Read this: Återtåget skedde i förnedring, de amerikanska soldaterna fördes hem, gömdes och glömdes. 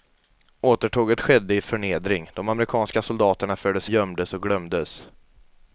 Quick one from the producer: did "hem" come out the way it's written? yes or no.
no